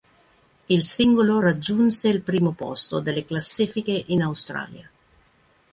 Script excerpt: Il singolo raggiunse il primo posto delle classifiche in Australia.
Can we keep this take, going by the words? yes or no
yes